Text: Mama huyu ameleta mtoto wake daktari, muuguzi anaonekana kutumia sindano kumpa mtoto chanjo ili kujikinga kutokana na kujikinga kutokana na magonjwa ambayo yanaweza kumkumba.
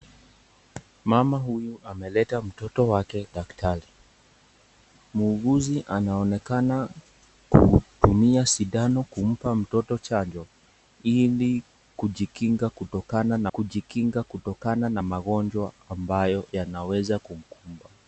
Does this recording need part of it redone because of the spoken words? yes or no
no